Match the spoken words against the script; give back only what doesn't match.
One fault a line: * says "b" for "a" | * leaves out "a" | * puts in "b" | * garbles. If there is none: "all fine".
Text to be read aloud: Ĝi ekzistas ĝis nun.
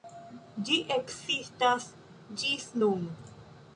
all fine